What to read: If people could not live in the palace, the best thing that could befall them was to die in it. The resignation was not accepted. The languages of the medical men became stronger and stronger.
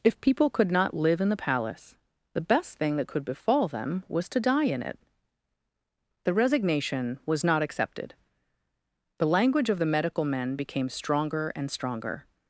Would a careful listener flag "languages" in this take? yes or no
yes